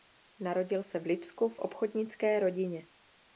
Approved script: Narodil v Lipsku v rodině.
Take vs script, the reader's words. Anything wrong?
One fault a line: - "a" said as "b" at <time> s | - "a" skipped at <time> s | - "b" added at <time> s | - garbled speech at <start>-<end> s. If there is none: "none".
- "se" added at 0.8 s
- "obchodnické" added at 1.6 s